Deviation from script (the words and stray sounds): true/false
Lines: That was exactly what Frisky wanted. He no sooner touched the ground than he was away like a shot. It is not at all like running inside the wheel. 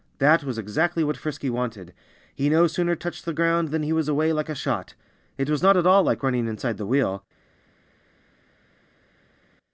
true